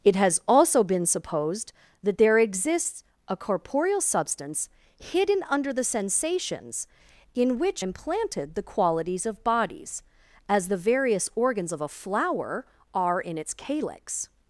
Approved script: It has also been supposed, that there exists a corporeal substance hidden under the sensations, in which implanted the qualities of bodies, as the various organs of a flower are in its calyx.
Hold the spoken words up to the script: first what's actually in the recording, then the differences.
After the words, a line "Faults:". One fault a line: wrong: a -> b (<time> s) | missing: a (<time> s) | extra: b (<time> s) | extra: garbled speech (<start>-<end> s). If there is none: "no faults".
It has also been supposed, that there exists a corporeal substance hidden under the sensations, in which implanted the qualities of bodies, as the various organs of a flower are in its calyx.
Faults:
no faults